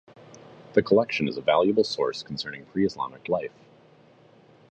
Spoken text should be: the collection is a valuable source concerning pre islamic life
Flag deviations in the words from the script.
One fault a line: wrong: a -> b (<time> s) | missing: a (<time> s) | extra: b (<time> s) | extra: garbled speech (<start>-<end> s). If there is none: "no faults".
no faults